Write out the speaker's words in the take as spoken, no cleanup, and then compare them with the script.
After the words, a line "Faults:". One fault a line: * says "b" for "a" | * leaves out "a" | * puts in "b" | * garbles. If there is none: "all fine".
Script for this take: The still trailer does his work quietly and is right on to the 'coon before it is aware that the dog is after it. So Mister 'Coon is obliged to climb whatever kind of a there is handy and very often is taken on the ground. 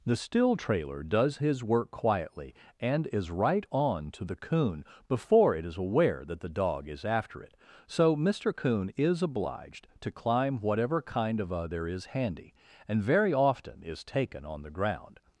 The still trailer does his work quietly and is right on to the 'coon before it is aware that the dog is after it. So Mister 'Coon is obliged to climb whatever kind of a there is handy and very often is taken on the ground.
Faults:
all fine